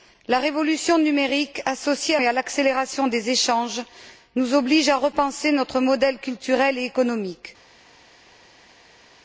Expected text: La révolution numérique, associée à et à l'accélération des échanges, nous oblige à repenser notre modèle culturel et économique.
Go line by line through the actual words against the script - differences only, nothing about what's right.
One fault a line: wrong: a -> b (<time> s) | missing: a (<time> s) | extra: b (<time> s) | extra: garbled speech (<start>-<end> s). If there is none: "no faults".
no faults